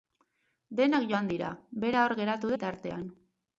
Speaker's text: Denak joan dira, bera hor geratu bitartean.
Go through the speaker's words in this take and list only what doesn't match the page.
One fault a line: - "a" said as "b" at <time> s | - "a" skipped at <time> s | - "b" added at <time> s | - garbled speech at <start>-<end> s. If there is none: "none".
none